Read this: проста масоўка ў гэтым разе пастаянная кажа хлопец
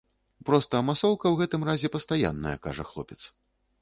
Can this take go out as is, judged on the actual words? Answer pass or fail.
pass